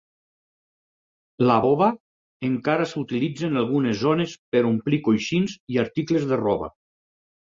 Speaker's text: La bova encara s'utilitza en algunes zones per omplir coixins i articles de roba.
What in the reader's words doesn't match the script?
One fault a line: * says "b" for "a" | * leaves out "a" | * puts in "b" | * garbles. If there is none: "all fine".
all fine